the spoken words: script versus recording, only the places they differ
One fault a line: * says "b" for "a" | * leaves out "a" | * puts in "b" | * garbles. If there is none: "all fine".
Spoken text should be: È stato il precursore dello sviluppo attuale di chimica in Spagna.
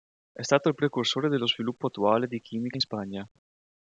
all fine